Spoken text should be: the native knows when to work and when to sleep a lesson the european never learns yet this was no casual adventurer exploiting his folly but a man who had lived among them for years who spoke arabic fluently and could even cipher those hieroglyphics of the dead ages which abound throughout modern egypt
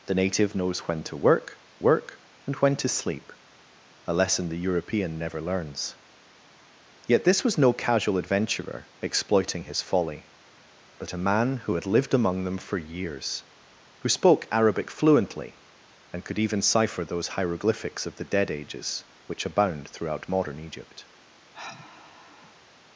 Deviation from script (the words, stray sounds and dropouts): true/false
true